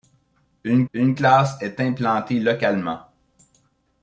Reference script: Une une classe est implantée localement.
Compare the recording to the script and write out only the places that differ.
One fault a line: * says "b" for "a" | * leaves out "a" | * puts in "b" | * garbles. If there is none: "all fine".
all fine